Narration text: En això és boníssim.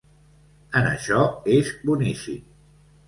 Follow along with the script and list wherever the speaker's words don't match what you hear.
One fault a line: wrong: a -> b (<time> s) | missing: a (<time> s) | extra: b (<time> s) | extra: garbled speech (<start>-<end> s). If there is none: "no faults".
no faults